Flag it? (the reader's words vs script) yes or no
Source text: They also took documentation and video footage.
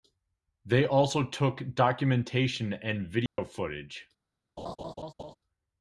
no